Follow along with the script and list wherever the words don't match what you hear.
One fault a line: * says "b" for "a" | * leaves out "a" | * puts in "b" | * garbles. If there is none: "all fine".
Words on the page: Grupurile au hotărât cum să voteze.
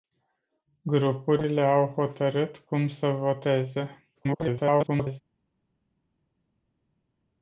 * garbles